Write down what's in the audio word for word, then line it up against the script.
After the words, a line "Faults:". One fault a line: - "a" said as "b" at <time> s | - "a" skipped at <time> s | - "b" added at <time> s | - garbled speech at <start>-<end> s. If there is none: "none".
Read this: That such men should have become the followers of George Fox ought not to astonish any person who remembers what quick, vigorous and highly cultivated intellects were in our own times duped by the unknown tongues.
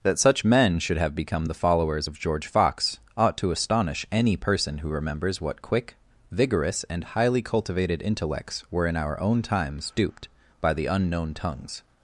That such men should have become the followers of George Fox ought to astonish any person who remembers what quick, vigorous and highly cultivated intellects were in our own times duped by the unknown tongues.
Faults:
- "not" skipped at 3.4 s